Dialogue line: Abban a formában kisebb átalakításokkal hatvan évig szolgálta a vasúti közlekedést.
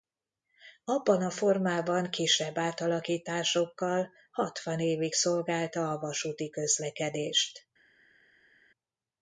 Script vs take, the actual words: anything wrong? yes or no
no